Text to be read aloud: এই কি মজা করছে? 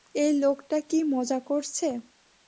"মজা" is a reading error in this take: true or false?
false